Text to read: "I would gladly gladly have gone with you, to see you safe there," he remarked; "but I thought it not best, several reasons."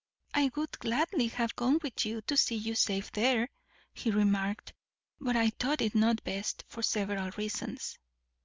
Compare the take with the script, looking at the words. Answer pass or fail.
fail